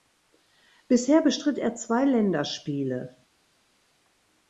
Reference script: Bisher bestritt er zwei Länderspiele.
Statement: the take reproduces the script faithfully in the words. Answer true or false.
true